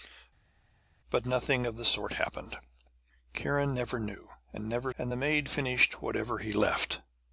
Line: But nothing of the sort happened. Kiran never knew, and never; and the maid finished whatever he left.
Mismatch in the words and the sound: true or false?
false